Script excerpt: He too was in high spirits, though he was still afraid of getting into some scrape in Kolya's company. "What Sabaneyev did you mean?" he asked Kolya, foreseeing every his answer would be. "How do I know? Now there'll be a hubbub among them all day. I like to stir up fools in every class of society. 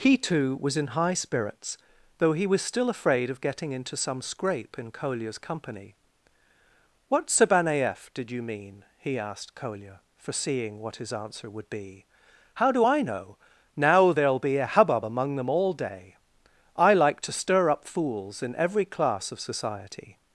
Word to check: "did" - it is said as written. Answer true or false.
true